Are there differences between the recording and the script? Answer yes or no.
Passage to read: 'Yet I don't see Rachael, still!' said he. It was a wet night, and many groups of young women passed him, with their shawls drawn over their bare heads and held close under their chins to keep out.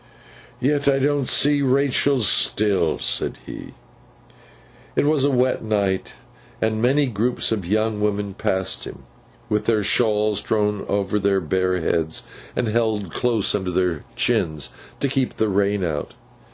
yes